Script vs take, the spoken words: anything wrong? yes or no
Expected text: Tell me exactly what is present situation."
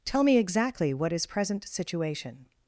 no